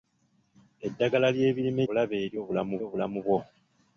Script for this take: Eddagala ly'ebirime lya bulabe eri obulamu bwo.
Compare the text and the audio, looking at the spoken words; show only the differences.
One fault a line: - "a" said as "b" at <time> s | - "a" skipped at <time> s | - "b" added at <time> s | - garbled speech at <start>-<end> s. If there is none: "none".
- "lya" skipped at 1.8 s
- "obulamu" added at 2.8 s